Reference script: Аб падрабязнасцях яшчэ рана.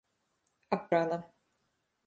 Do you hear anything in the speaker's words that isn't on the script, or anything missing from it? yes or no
yes